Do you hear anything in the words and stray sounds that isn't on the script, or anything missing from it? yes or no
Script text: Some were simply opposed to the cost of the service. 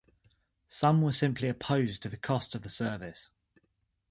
no